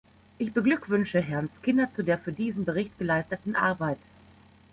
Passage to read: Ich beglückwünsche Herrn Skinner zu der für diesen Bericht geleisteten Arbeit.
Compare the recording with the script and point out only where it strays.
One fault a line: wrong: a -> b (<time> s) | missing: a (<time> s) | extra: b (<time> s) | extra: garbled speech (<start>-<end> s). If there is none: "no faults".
no faults